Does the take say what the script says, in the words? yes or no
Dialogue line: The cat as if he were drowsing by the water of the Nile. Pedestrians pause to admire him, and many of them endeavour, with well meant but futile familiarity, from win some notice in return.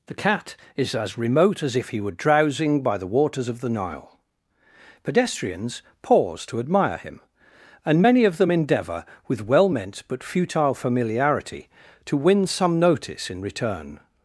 no